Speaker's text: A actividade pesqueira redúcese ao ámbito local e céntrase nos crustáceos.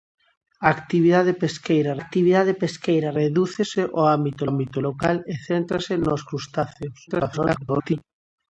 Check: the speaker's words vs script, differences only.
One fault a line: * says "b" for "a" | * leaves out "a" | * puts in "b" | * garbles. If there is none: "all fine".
* puts in "actividade pesqueira"
* puts in "ámbito"
* garbles